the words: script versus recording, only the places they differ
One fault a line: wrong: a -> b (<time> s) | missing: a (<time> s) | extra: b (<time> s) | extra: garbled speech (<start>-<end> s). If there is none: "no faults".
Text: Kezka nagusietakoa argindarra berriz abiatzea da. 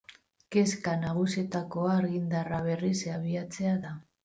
no faults